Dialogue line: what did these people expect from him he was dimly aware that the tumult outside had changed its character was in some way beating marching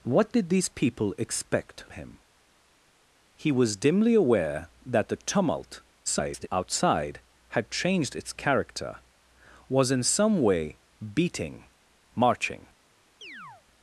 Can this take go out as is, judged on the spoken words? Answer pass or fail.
fail